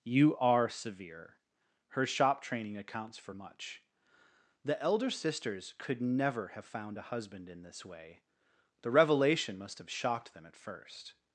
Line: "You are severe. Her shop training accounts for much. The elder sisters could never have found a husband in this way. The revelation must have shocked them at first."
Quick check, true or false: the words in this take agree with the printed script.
true